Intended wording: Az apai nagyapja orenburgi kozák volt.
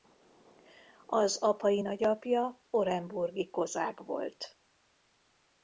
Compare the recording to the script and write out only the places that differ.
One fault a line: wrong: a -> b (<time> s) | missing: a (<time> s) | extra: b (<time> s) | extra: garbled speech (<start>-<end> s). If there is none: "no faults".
no faults